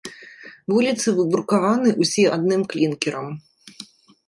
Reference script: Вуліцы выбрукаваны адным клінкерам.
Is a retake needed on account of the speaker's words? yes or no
yes